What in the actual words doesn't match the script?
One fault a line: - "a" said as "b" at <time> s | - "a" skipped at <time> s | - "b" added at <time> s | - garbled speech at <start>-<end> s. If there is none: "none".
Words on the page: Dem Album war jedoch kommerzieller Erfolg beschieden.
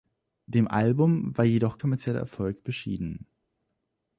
none